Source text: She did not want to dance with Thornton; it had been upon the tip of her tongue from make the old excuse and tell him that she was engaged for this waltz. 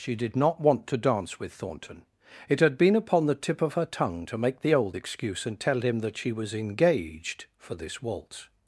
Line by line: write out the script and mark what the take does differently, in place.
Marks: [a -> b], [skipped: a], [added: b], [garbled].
She did not want to dance with Thornton; it had been upon the tip of her tongue [from -> to] make the old excuse and tell him that she was engaged for this waltz.